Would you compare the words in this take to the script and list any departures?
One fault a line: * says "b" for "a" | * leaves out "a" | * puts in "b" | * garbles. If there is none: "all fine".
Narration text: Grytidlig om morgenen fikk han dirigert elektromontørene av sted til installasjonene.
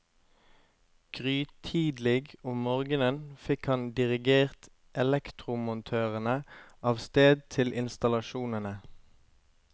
all fine